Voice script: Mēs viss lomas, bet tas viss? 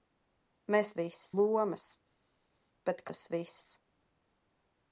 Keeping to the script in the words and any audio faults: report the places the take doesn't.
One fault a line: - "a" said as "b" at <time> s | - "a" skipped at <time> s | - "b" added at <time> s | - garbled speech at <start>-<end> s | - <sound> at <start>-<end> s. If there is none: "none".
none